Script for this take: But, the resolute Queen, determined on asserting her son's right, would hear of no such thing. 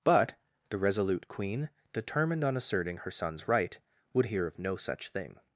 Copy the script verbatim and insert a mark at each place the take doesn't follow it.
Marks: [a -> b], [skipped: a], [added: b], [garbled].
But, the resolute Queen, determined on asserting her son's right, would hear of no such thing.